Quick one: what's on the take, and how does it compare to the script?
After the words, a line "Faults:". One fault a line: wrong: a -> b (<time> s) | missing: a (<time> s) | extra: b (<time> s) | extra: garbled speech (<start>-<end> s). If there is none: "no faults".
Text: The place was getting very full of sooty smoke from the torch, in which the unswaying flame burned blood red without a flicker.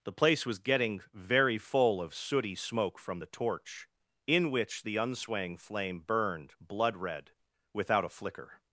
The place was getting very full of sooty smoke from the torch, in which the unswaying flame burned blood red without a flicker.
Faults:
no faults